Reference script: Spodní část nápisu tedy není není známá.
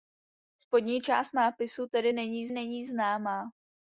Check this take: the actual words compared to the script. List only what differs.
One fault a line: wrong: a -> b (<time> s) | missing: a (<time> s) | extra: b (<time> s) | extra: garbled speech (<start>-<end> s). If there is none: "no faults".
no faults